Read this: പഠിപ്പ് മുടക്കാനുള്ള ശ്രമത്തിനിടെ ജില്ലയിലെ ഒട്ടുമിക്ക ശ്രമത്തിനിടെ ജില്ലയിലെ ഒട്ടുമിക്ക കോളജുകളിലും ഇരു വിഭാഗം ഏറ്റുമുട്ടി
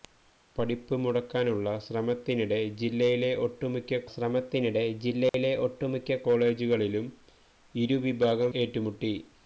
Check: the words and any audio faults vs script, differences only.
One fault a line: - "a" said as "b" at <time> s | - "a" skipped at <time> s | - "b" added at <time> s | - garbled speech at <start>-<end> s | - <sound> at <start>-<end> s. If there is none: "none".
- dropout at 5.3-5.3 s